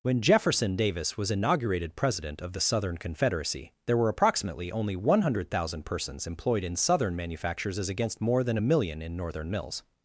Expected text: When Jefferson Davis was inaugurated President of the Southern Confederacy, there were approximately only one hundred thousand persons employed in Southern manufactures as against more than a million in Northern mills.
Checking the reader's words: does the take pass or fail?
pass